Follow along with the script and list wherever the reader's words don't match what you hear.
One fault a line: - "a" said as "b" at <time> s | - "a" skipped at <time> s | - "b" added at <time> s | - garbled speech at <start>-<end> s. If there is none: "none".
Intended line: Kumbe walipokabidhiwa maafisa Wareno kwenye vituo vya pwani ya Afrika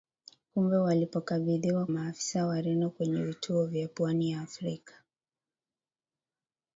none